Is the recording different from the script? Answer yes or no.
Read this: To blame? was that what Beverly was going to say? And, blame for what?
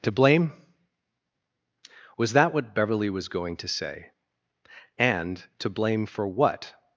yes